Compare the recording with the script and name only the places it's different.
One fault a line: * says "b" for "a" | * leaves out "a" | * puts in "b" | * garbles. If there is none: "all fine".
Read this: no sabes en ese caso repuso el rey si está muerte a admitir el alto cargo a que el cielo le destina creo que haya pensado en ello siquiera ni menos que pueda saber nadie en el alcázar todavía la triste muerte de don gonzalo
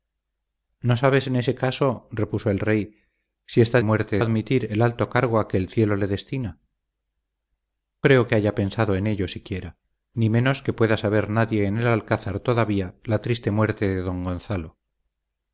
all fine